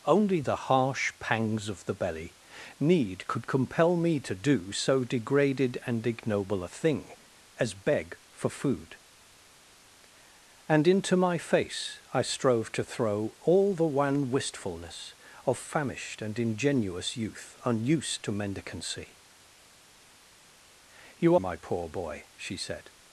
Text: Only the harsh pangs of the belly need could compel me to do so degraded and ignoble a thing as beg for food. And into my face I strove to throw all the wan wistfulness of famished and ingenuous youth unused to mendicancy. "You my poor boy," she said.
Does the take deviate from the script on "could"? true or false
false